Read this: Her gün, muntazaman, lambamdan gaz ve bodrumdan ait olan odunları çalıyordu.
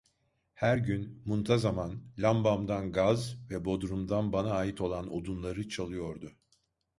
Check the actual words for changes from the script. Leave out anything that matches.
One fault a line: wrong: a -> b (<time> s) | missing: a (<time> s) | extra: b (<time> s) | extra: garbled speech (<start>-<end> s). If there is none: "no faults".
extra: bana (4.3 s)